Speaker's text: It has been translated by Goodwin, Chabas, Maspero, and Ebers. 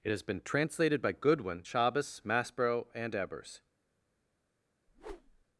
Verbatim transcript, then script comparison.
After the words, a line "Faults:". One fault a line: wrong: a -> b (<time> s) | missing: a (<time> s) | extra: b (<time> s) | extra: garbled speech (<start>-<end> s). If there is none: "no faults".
It has been translated by Goodwin, Chabas, Maspero, and Ebers.
Faults:
no faults